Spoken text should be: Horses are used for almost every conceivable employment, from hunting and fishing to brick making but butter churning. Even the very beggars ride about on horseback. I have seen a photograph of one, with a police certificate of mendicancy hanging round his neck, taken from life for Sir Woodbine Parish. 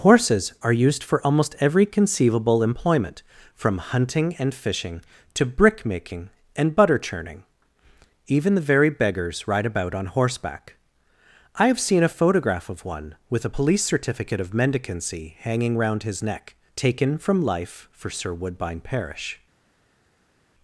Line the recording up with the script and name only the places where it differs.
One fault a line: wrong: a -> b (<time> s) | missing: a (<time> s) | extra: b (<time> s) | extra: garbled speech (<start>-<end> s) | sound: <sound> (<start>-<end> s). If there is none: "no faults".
wrong: but -> and (6.6 s)